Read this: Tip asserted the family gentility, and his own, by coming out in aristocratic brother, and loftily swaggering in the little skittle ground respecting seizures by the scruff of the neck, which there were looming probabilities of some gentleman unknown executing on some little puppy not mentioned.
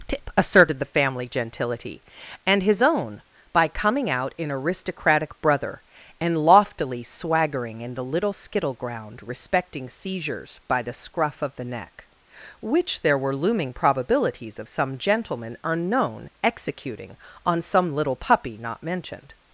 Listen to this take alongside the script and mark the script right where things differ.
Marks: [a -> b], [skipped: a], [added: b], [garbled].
Tip asserted the family gentility, and his own, by coming out in aristocratic brother, and loftily swaggering in the little skittle ground respecting seizures by the scruff of the neck, which there were looming probabilities of some gentleman unknown executing on some little puppy not mentioned.